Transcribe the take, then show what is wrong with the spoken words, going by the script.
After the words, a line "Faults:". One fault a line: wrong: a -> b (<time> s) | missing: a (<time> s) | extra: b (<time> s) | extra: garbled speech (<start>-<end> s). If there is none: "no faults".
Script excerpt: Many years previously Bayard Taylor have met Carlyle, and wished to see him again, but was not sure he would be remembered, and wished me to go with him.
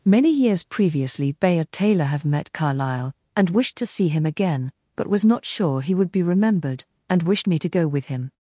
Many years previously Bayard Taylor have met Carlyle, and wished to see him again, but was not sure he would be remembered, and wished me to go with him.
Faults:
no faults